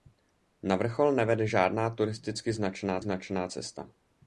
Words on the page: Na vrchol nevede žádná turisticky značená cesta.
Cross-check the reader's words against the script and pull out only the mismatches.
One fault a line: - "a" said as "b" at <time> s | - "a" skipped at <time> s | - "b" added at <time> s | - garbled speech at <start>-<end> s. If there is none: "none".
- "značená" added at 3.0 s